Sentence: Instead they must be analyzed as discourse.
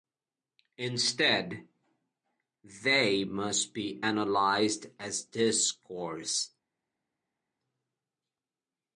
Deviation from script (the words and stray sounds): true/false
false